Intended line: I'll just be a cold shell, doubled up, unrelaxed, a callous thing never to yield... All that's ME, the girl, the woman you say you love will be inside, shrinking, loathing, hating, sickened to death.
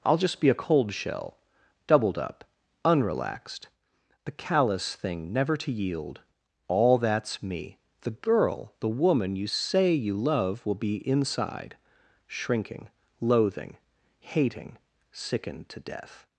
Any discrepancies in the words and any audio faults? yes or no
yes